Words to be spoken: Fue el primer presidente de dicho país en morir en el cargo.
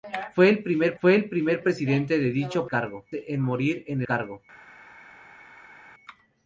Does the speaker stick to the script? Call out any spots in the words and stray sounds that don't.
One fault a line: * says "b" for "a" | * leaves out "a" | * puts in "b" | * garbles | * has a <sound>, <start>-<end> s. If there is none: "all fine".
* puts in "fue el primer"
* says "cargo" for "país"
* leaves out "el"